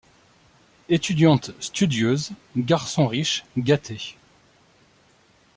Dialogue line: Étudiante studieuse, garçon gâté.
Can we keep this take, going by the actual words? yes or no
no